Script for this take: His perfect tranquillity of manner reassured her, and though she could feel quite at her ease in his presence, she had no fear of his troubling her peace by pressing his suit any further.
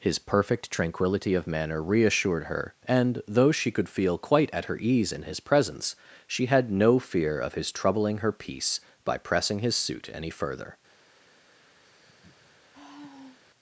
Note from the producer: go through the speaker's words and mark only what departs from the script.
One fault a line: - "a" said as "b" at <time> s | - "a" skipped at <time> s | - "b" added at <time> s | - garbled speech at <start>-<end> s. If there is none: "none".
none